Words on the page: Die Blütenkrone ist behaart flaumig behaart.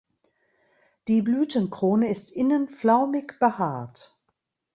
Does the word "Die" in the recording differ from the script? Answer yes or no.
no